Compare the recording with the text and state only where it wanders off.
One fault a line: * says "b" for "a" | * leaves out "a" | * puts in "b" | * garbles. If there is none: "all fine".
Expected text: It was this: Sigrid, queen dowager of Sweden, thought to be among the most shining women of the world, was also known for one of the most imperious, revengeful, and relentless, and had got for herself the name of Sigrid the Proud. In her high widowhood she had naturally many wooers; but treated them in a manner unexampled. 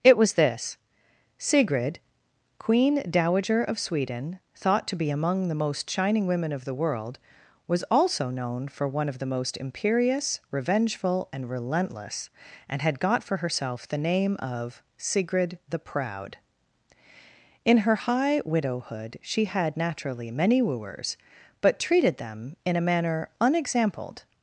all fine